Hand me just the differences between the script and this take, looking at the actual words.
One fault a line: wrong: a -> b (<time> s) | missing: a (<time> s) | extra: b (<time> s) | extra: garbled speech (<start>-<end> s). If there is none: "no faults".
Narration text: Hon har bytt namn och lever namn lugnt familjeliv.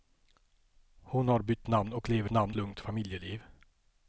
no faults